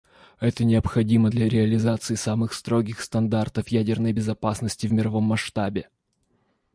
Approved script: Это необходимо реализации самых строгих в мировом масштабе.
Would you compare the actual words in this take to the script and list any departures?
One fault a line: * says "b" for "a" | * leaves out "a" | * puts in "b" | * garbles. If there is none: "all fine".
* puts in "для"
* puts in "стандартов ядерной безопасности"